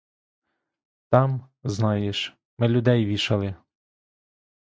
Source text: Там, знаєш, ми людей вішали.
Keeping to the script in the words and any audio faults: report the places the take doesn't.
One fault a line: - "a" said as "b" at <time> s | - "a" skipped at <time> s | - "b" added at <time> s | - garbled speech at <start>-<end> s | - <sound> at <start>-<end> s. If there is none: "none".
none